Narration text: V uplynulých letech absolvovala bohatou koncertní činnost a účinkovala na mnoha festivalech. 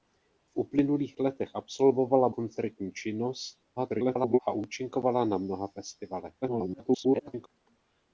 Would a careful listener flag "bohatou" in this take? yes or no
yes